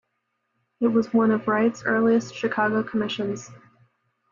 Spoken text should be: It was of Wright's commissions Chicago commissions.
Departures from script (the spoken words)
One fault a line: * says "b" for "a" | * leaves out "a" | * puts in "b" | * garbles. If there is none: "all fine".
* puts in "one"
* says "earliest" for "commissions"